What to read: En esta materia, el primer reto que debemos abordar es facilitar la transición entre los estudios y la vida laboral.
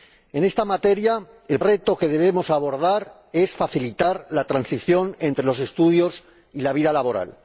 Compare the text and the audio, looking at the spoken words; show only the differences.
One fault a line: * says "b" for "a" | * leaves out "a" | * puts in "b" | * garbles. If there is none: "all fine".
* leaves out "primer"